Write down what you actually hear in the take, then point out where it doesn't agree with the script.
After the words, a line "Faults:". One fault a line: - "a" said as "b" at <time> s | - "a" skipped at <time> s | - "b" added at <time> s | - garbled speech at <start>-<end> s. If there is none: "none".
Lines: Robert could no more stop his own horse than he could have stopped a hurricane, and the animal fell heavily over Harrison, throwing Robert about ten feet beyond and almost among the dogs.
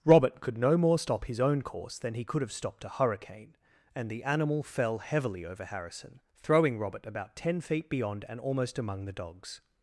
Robert could no more stop his own course than he could have stopped a hurricane, and the animal fell heavily over Harrison, throwing Robert about ten feet beyond and almost among the dogs.
Faults:
- "horse" said as "course" at 1.6 s